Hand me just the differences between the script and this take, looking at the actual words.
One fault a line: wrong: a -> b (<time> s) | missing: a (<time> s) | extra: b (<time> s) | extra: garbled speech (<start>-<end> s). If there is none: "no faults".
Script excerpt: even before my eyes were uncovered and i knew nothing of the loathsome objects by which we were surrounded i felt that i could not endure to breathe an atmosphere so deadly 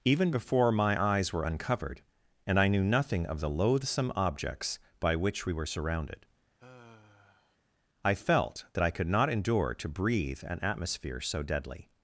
no faults